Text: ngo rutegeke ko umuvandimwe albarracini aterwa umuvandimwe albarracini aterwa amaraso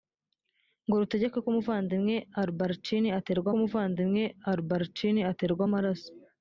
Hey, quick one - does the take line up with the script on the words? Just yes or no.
yes